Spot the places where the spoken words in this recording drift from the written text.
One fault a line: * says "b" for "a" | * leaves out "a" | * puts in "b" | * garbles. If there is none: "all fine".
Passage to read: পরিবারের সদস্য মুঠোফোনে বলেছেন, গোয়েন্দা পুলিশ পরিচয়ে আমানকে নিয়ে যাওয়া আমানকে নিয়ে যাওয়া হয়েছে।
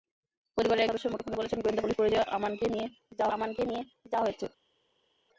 all fine